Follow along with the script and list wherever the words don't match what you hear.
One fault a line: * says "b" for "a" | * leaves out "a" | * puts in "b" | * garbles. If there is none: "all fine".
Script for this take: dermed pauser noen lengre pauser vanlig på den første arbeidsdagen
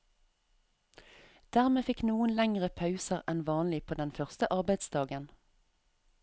* says "fikk" for "pauser"
* puts in "enn"